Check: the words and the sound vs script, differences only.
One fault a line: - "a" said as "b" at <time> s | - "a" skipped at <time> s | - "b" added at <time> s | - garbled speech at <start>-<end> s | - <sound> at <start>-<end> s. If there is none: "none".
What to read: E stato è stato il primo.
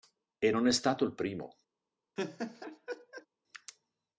- "stato" said as "non" at 0.5 s
- laugh at 2.2-3.3 s